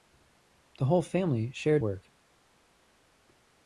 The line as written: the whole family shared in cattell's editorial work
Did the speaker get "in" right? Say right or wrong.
wrong